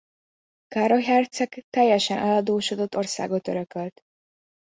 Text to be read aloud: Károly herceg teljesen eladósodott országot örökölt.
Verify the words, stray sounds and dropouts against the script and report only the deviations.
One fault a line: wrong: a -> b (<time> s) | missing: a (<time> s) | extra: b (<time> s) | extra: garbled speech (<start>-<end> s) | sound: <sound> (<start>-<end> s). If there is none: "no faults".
no faults